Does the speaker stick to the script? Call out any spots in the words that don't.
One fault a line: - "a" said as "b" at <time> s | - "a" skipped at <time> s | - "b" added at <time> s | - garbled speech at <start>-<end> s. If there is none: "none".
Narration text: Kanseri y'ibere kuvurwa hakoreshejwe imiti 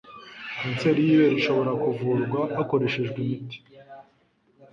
- "ishobora" added at 1.4 s